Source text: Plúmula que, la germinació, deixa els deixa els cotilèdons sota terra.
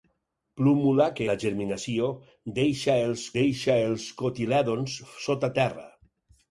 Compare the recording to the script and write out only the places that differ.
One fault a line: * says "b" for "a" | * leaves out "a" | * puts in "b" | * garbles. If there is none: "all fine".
all fine